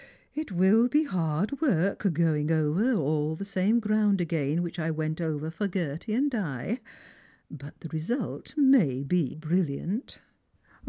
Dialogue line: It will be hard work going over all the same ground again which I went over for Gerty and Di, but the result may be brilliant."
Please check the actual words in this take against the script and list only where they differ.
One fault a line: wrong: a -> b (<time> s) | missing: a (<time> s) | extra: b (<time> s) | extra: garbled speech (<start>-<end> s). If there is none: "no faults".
no faults